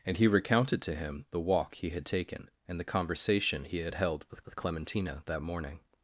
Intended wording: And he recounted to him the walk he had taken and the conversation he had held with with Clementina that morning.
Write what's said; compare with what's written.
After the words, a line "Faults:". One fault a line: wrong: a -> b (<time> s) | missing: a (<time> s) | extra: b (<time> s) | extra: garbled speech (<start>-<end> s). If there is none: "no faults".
And he recounted to him the walk he had taken and the conversation he had held with with Clementina that morning.
Faults:
no faults